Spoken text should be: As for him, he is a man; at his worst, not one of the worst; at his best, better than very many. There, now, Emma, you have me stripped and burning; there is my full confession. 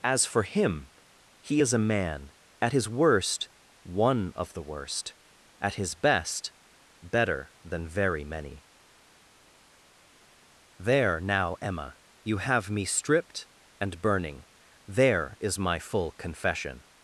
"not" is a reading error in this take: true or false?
true